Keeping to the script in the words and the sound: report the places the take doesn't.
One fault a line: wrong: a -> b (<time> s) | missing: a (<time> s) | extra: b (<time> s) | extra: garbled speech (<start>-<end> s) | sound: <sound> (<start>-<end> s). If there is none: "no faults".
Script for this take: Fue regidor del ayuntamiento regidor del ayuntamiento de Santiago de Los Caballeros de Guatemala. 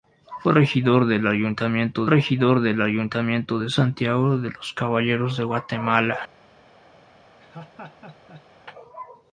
sound: laugh (7.4-8.5 s)